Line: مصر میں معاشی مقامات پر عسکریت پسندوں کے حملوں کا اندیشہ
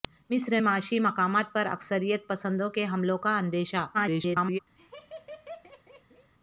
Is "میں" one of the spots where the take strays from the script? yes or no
yes